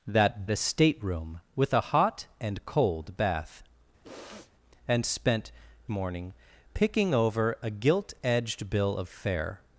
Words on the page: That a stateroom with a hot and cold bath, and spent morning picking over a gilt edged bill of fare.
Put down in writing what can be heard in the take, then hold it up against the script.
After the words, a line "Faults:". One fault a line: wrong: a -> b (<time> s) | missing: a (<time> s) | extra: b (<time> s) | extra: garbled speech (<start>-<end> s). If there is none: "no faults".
That a stateroom with a hot and cold bath, and spent morning picking over a gilt edged bill of fare.
Faults:
no faults